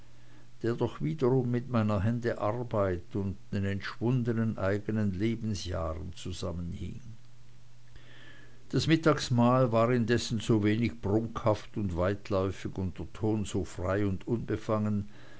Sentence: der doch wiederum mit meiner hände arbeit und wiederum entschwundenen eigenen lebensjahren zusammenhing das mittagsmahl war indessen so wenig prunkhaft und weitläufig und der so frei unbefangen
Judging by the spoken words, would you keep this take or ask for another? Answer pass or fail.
fail